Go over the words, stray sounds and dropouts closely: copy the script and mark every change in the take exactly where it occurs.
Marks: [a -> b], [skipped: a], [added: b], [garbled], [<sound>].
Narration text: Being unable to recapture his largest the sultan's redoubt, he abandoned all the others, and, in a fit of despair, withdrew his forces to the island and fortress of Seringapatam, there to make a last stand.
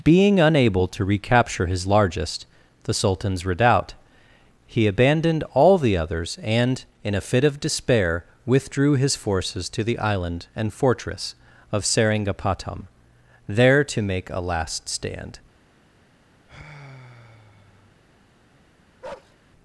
Being unable to recapture his largest the sultan's redoubt, he abandoned all the others, and, in a fit of despair, withdrew his forces to the island and fortress of Seringapatam, there to make a last stand. [sigh] [bark]